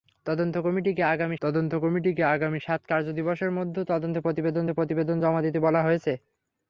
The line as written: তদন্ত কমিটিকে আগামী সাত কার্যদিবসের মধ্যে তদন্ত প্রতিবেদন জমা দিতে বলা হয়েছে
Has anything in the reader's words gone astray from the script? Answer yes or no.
yes